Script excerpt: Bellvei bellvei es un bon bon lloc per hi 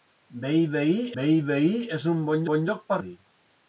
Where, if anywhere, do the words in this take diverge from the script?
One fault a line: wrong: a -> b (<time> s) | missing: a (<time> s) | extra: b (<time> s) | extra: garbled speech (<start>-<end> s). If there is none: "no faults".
no faults